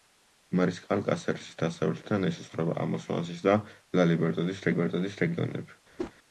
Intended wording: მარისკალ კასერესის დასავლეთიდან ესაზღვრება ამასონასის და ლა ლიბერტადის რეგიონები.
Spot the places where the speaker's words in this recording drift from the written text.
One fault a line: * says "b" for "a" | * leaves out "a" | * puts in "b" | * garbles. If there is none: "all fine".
* puts in "ლიბერტადის"